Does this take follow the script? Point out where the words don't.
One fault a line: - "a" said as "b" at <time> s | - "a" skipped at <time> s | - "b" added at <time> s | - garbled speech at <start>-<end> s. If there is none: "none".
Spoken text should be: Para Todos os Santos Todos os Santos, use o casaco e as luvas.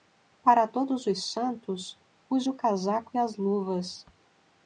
- "Todos os Santos" skipped at 2.0 s